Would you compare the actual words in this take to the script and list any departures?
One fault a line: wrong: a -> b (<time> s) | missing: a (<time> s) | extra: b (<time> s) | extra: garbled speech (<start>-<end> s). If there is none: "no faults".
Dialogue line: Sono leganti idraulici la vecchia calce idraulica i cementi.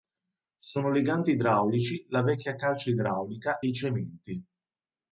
no faults